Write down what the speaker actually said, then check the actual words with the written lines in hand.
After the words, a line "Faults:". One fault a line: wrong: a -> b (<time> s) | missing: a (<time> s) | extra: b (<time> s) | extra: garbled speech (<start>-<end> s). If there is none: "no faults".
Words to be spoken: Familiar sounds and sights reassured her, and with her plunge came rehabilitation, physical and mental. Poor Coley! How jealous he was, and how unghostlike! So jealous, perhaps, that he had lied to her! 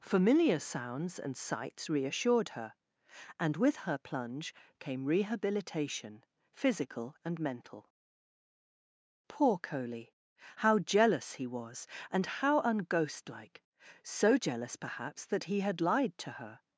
Familiar sounds and sights reassured her, and with her plunge came rehabilitation, physical and mental. Poor Coley! How jealous he was, and how unghostlike! So jealous, perhaps, that he had lied to her!
Faults:
no faults